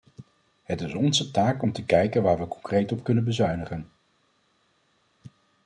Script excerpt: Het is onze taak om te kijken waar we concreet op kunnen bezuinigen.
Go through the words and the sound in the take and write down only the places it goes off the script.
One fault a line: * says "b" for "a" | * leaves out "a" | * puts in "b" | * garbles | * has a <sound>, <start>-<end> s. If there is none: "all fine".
all fine